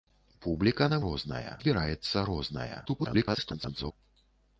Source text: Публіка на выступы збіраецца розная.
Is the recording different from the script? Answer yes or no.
yes